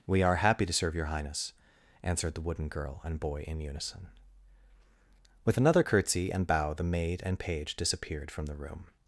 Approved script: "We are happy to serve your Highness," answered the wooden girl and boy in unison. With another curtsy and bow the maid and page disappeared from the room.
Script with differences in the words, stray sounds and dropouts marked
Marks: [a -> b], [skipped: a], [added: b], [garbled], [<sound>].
"We are happy to serve your Highness," answered the wooden girl and boy in unison. With another curtsy and bow the maid and page disappeared from the room.